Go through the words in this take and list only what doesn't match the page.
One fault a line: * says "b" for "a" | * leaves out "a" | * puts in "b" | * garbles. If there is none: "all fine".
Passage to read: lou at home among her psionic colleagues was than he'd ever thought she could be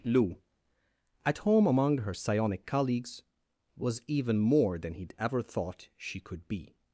* puts in "even more"